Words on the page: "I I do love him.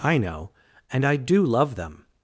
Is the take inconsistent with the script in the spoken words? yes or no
yes